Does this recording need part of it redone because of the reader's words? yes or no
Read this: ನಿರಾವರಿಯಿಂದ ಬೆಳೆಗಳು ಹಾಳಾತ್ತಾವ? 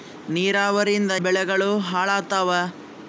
no